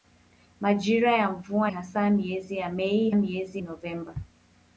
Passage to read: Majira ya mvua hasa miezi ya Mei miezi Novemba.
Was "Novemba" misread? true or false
false